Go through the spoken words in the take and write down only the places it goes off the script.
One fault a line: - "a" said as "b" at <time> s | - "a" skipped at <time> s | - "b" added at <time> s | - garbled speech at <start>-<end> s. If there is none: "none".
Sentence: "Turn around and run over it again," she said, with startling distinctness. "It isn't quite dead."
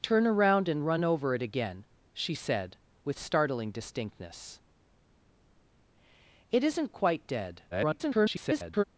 - garbled speech at 7.7-8.8 s